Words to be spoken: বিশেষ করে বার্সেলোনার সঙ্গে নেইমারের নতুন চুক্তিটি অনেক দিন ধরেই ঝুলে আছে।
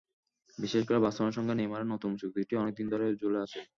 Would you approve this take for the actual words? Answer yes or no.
yes